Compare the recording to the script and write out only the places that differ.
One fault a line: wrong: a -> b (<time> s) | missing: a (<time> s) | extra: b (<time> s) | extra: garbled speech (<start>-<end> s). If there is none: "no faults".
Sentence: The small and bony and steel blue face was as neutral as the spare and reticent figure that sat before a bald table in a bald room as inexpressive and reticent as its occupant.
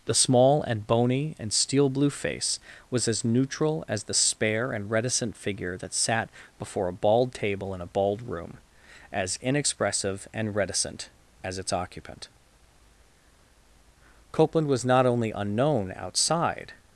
extra: Copeland was not only unknown outside (14.3 s)